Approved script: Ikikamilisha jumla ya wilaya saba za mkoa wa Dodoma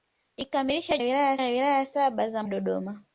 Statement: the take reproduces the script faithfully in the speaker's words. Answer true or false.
false